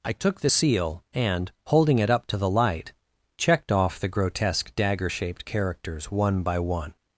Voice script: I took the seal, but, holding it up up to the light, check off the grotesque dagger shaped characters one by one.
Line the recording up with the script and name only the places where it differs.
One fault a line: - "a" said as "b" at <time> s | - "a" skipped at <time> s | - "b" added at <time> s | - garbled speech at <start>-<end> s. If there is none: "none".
- "but" said as "and" at 1.1 s
- "up" skipped at 2.3 s
- "check" said as "checked" at 3.4 s